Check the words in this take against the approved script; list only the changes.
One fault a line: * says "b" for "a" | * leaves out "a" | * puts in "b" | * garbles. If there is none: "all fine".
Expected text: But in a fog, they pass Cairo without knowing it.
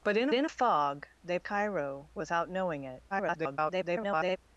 * puts in "in"
* leaves out "pass"
* garbles